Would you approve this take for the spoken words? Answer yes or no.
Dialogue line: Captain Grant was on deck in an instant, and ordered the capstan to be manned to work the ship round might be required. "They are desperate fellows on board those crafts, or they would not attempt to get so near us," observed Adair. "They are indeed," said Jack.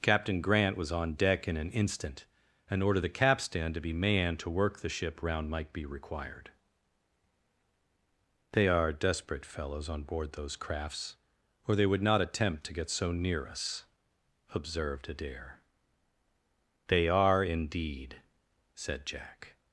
yes